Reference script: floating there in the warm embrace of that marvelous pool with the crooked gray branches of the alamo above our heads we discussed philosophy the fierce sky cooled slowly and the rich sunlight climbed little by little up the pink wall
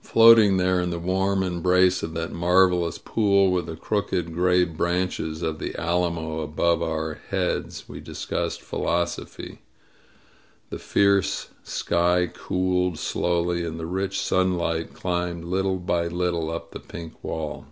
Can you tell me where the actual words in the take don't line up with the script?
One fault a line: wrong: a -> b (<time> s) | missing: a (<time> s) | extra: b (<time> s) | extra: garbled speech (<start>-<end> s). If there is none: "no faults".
no faults